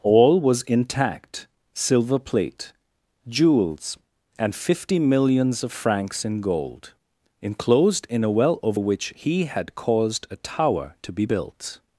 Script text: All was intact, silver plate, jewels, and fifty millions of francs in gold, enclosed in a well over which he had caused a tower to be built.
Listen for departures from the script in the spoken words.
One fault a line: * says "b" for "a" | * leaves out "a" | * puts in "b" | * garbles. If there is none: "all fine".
all fine